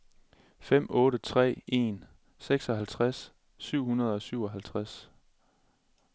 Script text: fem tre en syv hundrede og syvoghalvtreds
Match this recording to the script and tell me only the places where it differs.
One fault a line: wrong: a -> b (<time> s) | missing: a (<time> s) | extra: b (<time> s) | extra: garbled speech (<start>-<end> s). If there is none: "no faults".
extra: otte (0.9 s)
extra: seksoghalvtreds (2.4 s)